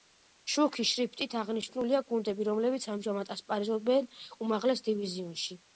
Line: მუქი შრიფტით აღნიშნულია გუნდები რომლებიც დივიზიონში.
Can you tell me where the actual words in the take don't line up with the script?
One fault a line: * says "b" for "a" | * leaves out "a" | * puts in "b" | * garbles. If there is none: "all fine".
* puts in "ამჟამად ასპარეზობენ უმაღლეს"